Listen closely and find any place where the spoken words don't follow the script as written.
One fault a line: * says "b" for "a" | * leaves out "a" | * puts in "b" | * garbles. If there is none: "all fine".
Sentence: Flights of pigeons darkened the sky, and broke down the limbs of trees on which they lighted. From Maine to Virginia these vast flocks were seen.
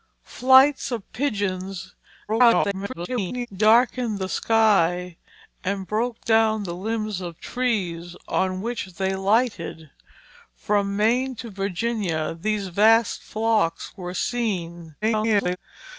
* garbles
* garbles